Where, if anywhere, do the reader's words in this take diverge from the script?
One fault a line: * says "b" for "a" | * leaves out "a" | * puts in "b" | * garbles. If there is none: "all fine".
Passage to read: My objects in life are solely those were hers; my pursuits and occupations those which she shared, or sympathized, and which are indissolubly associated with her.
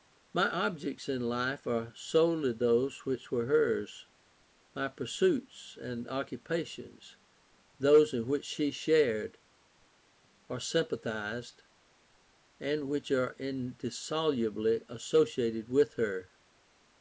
* puts in "which"
* puts in "in"